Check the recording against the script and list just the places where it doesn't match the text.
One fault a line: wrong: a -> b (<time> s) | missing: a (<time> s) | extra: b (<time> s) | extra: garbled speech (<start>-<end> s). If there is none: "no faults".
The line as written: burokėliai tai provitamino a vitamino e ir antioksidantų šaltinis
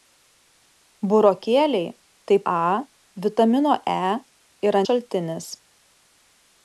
missing: provitamino (2.4 s)
missing: antioksidantų (4.8 s)